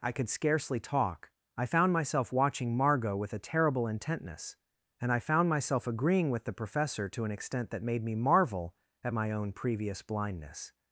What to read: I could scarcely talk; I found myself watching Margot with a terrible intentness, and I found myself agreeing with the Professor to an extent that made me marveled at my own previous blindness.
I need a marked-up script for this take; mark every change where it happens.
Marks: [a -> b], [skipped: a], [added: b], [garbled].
I could scarcely talk; I found myself watching Margot with a terrible intentness, and I found myself agreeing with the Professor to an extent that made me [marveled -> marvel] at my own previous blindness.